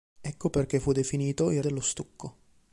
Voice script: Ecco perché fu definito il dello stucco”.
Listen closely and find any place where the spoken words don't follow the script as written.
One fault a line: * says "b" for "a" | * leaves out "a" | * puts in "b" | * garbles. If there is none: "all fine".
all fine